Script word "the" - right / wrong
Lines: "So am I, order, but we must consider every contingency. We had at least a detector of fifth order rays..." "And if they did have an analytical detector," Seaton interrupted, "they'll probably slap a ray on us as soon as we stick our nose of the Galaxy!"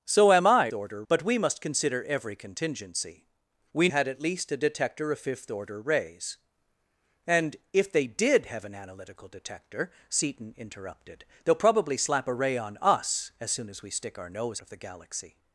right